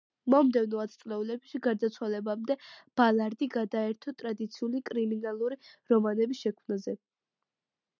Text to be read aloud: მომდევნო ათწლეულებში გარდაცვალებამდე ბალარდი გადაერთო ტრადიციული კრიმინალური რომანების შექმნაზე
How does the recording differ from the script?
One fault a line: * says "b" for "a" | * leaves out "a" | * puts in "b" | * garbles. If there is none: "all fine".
all fine